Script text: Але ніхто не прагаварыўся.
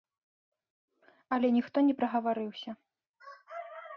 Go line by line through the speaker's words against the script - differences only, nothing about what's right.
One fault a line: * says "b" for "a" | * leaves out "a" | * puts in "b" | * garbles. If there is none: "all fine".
all fine